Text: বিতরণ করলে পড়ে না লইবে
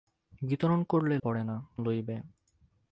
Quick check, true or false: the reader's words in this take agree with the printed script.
true